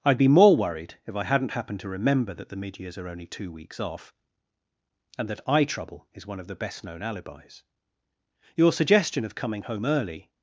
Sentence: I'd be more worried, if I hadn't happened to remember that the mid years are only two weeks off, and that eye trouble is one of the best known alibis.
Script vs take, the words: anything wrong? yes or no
yes